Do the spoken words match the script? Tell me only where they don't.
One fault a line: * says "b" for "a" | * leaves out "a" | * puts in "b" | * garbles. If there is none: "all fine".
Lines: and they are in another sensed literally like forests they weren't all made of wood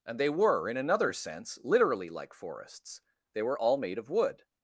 * says "were" for "are"
* says "sense" for "sensed"
* says "were" for "weren't"